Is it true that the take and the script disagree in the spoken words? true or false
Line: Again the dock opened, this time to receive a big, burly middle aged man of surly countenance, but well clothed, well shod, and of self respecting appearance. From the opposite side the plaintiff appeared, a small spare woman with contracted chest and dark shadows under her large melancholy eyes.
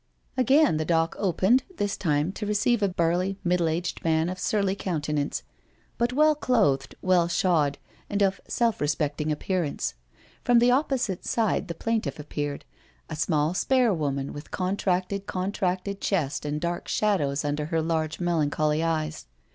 true